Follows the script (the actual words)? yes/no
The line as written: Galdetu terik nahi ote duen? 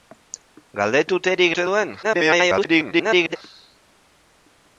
no